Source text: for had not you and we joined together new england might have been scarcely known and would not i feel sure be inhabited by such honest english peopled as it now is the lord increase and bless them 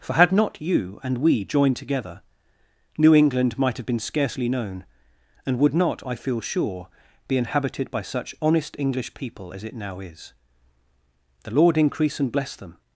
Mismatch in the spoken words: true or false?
true